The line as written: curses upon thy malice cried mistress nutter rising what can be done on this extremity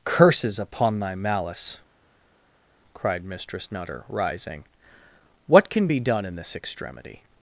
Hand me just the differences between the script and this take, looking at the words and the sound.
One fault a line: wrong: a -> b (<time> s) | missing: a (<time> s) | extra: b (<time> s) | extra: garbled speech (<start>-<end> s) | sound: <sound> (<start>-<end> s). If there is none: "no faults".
wrong: on -> in (6.2 s)